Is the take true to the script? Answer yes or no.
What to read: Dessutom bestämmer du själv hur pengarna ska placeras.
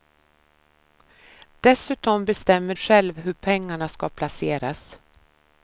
no